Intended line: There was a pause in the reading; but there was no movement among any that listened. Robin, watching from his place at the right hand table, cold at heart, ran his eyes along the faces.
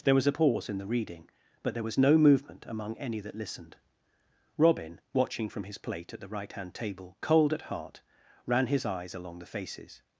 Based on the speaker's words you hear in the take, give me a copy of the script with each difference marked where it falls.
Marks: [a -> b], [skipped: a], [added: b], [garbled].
There was a pause in the reading; but there was no movement among any that listened. Robin, watching from his [place -> plate] at the right hand table, cold at heart, ran his eyes along the faces.